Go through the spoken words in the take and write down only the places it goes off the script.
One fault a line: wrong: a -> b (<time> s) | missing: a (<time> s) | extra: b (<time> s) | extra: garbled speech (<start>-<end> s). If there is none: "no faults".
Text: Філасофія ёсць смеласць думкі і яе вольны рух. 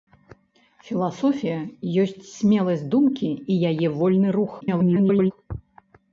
extra: garbled speech (4.6-5.3 s)